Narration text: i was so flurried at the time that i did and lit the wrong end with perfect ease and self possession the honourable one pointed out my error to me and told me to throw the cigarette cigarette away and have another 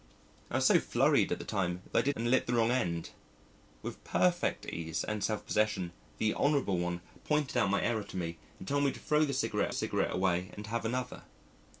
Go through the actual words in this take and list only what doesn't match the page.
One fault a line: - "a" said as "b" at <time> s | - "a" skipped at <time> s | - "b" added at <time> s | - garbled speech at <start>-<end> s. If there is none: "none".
none